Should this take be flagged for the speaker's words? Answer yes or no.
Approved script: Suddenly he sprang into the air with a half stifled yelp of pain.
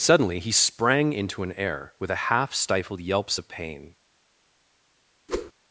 yes